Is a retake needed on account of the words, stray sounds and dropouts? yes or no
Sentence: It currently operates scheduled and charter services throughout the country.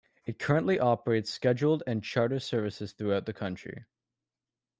no